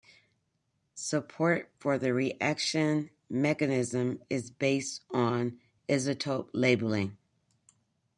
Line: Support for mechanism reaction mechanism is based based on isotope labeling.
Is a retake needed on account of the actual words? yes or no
yes